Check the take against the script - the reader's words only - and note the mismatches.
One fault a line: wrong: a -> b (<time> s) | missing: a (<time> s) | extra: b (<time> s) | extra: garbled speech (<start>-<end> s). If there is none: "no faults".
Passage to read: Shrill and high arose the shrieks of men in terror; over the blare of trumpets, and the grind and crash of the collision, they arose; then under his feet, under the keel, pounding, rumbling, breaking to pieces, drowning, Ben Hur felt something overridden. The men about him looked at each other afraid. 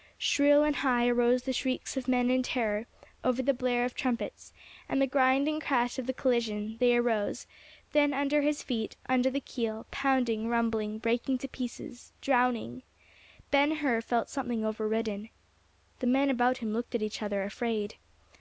no faults